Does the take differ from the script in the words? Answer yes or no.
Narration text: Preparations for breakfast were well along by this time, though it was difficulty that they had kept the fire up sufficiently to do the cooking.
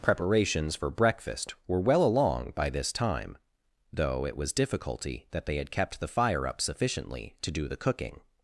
no